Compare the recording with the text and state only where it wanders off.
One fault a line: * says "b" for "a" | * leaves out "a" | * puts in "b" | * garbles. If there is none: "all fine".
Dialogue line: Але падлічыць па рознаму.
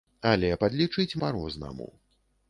all fine